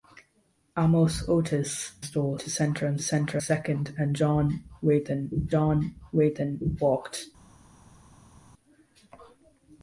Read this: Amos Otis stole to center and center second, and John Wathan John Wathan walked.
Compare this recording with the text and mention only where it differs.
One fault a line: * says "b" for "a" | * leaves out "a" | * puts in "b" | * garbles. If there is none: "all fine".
all fine